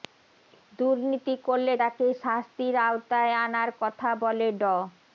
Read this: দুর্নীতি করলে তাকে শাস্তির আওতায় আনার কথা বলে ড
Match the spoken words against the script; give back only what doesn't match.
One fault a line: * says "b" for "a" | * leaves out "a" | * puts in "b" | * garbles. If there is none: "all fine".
all fine